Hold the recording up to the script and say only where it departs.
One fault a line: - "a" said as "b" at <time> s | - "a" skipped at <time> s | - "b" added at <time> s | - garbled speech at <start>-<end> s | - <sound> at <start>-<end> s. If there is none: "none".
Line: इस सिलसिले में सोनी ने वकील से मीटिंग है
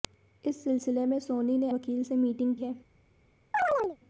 - chirp at 3.5-4.0 s